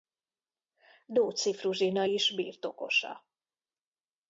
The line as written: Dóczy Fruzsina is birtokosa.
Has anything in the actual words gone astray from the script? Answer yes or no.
no